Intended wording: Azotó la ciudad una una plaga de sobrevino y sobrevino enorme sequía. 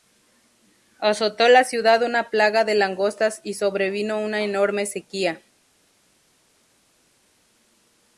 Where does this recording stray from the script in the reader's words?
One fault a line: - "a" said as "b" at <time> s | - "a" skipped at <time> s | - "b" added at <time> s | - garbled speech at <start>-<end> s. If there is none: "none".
- "una" skipped at 2.3 s
- "sobrevino" said as "langostas" at 2.7 s
- "una" added at 4.2 s